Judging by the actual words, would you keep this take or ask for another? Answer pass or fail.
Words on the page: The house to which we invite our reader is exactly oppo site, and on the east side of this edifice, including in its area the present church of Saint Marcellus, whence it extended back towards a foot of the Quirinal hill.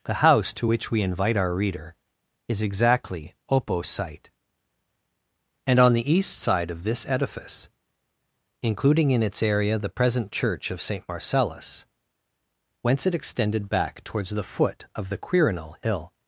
fail